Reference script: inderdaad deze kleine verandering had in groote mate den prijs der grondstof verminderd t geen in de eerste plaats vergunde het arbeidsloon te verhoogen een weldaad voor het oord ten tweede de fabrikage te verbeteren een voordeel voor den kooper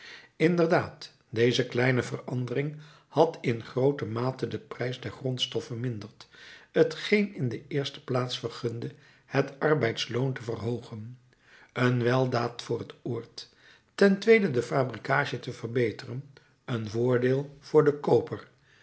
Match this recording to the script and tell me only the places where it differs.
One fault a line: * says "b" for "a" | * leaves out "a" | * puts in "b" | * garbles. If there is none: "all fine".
all fine